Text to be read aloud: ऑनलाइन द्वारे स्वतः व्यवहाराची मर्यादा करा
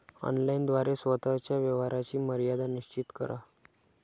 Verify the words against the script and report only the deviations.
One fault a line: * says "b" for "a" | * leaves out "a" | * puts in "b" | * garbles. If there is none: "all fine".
* puts in "च्या"
* puts in "निश्चित"